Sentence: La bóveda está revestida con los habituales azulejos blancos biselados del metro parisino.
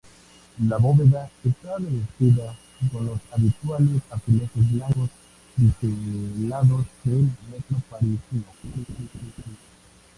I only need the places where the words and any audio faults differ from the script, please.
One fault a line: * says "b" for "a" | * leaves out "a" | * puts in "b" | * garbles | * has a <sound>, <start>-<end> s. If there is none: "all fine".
* has a laugh, 8.6-9.6 s